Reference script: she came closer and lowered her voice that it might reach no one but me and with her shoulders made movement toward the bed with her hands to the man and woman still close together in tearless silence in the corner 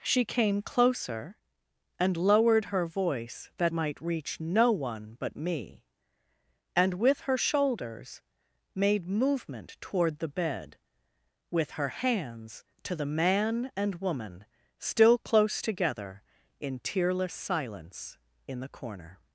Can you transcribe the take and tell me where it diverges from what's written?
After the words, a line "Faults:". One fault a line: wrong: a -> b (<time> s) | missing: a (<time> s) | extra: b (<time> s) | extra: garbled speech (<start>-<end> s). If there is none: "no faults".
she came closer and lowered her voice that might reach no one but me and with her shoulders made movement toward the bed with her hands to the man and woman still close together in tearless silence in the corner
Faults:
missing: it (3.7 s)